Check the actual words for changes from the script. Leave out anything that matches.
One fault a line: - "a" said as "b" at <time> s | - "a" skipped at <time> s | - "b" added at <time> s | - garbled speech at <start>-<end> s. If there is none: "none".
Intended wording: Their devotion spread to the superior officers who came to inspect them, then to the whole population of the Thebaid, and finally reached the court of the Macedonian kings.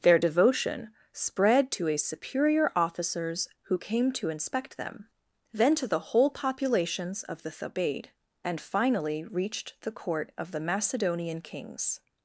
- "the" said as "a" at 1.9 s
- "population" said as "populations" at 6.3 s